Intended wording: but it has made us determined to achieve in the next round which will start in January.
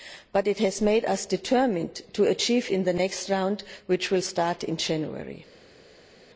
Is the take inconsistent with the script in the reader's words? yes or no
no